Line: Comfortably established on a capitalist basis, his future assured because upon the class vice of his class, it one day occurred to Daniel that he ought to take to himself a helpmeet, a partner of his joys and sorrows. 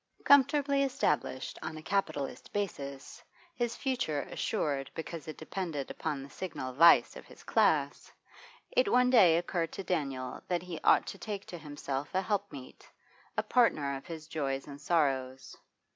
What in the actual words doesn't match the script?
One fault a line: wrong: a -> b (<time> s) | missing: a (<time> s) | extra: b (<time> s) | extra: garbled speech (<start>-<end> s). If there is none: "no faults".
extra: it depended (5.3 s)
wrong: class -> signal (6.3 s)